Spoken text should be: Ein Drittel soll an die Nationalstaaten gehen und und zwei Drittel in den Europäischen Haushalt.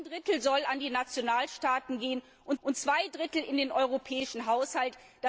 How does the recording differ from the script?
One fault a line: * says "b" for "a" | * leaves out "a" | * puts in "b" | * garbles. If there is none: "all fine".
all fine